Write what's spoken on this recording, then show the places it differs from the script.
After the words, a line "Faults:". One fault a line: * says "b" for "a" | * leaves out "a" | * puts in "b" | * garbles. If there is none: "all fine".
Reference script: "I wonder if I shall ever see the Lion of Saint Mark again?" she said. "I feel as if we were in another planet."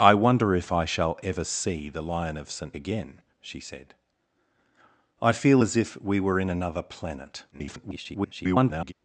"I wonder if I shall ever see the Lion of Saint Again?" she said. "I feel as if we were in another planet." [garbled]
Faults:
* leaves out "Mark"
* garbles